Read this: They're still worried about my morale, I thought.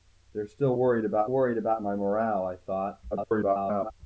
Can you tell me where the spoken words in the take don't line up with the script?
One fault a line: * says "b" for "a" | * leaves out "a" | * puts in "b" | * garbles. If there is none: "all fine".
* puts in "worried about"
* garbles